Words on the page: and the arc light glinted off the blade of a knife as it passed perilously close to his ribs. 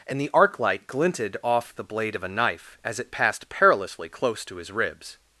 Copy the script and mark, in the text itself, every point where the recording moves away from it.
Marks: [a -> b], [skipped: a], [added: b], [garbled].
and the arc light glinted off the blade of a knife as it passed perilously close to his ribs.